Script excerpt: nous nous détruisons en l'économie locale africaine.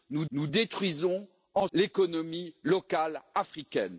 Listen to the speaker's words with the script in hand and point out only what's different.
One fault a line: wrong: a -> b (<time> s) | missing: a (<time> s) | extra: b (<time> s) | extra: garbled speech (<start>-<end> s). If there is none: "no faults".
no faults